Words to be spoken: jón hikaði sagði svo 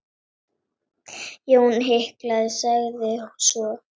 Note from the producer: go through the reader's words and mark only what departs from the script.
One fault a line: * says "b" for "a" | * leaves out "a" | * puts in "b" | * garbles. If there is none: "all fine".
all fine